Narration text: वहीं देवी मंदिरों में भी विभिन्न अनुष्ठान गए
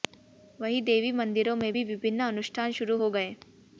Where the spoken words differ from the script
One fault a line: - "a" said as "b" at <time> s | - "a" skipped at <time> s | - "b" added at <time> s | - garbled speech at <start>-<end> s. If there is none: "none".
- "शुरू हो" added at 2.7 s